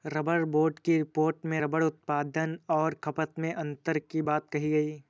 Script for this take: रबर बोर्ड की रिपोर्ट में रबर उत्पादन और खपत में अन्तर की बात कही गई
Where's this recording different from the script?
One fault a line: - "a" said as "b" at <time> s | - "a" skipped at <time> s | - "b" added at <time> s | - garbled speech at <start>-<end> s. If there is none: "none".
none